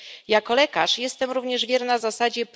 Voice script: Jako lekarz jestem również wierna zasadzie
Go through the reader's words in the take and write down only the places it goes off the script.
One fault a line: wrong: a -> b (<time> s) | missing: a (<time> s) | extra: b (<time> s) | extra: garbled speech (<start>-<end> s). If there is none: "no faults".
no faults